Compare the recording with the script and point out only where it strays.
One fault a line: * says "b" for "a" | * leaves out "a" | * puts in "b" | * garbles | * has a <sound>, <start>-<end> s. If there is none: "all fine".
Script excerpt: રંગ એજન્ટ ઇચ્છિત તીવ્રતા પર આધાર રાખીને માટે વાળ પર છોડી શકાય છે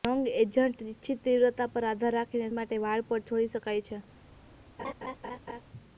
* has a laugh, 4.8-5.6 s